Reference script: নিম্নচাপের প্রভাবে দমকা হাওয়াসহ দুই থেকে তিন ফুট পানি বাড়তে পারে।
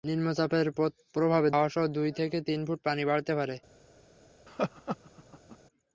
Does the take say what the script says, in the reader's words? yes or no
no